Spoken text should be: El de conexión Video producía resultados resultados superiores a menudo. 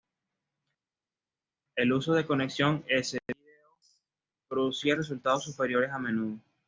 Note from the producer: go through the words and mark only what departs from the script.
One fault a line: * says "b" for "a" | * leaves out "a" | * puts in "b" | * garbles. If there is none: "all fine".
* puts in "uso"
* puts in "S"
* leaves out "resultados"